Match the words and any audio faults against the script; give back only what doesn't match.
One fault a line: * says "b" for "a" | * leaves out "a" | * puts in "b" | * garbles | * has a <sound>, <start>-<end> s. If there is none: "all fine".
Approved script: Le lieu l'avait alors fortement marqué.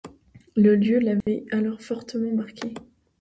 * has a dropout, 1.2-1.3 s